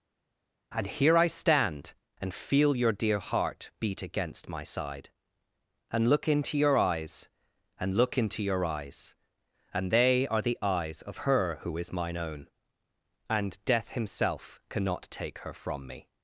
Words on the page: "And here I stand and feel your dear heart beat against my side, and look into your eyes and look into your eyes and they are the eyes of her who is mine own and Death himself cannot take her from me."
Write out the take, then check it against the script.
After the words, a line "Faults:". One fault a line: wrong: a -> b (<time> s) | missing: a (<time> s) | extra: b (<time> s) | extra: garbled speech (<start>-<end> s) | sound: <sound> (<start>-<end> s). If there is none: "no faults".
"And here I stand and feel your dear heart beat against my side, and look into your eyes and look into your eyes and they are the eyes of her who is mine own and Death himself cannot take her from me."
Faults:
no faults